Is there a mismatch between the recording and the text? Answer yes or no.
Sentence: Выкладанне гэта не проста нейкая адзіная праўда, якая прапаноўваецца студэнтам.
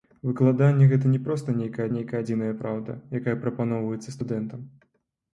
yes